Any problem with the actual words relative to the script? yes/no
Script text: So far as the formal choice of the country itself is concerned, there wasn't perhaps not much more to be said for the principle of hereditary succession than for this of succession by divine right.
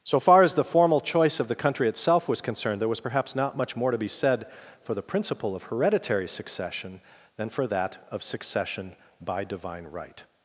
yes